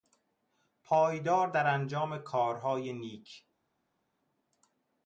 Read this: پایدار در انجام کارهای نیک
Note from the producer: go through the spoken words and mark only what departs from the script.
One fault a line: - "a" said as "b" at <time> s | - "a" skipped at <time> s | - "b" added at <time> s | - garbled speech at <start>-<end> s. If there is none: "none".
none